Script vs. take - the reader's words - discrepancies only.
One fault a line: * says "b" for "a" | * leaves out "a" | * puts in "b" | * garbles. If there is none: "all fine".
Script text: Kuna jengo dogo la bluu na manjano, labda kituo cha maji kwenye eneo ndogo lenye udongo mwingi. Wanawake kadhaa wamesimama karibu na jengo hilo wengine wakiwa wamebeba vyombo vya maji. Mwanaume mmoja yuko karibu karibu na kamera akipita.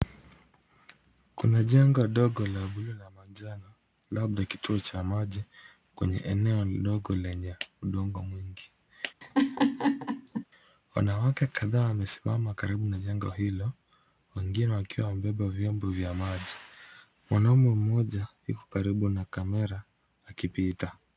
* leaves out "karibu"